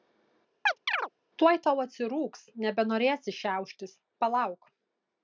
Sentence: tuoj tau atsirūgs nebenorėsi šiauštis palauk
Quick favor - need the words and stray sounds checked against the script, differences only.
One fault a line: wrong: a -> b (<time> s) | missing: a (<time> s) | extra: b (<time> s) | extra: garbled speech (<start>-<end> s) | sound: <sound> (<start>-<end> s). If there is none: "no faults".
sound: chirp (0.7-1.1 s)